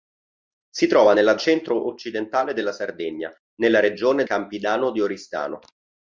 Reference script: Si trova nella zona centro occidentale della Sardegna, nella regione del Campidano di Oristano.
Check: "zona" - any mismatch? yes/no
yes